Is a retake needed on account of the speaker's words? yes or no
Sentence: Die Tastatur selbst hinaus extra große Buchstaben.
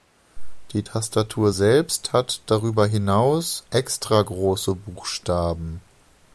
yes